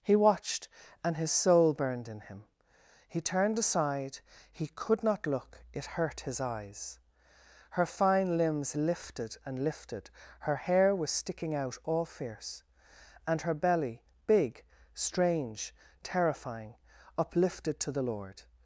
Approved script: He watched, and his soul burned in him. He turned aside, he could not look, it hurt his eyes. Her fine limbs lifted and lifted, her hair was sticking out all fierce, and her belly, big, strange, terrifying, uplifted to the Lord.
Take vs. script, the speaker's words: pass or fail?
pass